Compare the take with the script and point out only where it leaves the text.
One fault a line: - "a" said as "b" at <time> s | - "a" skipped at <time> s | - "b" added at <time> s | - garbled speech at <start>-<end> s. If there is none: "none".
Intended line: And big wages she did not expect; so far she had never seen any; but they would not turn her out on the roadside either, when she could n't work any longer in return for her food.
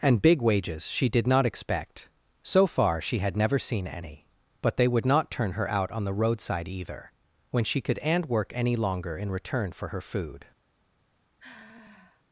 - "n't" said as "and" at 8.0 s